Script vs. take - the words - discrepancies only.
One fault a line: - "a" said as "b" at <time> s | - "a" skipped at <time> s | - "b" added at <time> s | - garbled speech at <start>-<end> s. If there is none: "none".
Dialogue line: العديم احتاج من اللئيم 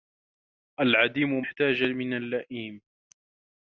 none